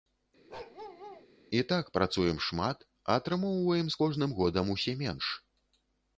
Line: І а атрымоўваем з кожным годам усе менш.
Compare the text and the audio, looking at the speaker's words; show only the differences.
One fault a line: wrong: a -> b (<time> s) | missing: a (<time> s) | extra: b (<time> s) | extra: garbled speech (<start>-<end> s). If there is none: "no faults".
extra: так працуем шмат (1.7 s)